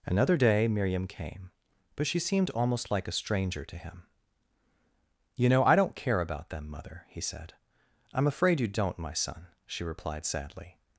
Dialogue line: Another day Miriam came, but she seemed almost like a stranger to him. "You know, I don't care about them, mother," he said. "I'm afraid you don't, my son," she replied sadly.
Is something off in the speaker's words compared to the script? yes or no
no